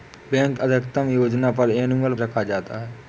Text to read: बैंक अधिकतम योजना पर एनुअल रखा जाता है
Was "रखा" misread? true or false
false